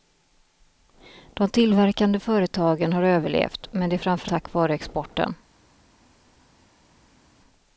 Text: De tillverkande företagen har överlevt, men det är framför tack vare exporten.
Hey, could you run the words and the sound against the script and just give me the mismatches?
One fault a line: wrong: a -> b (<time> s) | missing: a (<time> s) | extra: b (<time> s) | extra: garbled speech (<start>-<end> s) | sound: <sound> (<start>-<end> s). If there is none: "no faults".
no faults